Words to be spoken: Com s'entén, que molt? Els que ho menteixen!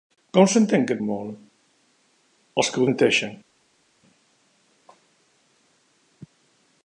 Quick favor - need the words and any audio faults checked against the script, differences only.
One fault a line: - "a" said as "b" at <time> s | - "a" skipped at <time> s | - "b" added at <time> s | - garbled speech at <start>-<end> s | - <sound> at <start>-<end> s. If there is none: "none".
none